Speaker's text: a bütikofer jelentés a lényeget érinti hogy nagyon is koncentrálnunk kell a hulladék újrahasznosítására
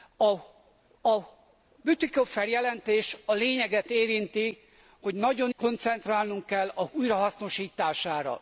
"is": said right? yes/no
no